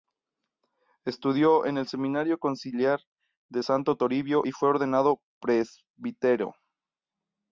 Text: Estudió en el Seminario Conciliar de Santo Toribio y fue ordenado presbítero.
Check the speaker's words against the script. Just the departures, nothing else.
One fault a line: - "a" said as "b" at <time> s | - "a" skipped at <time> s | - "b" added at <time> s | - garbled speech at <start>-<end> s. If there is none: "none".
none